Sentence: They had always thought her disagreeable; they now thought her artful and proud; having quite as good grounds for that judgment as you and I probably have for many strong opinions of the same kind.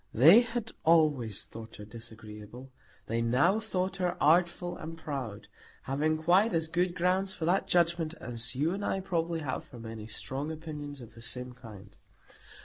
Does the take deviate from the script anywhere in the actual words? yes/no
no